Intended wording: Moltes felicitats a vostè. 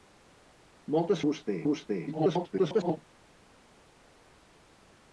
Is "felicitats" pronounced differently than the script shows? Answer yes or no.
yes